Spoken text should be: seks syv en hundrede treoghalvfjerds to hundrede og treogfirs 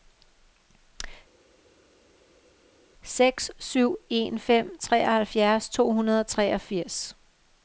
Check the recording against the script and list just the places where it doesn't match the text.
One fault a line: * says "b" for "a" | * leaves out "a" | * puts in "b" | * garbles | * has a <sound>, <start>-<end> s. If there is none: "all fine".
* says "fem" for "hundrede"